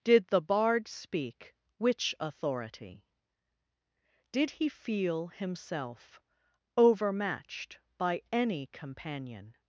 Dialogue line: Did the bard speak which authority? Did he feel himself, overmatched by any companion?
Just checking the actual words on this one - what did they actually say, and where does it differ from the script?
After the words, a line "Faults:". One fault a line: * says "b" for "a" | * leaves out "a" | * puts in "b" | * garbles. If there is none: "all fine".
Did the bard speak which authority? Did he feel himself, overmatched by any companion?
Faults:
all fine